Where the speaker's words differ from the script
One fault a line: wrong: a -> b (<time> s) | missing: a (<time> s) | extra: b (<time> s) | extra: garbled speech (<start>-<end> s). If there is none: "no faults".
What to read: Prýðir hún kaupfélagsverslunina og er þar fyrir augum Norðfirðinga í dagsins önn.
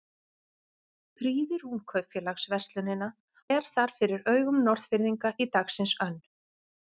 missing: og (3.1 s)